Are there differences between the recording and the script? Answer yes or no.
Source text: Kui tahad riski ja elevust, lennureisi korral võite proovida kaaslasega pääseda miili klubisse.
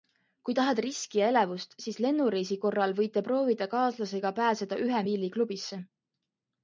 yes